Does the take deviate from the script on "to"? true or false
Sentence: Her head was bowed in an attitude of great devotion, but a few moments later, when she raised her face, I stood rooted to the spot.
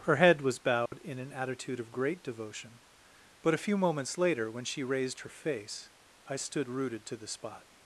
false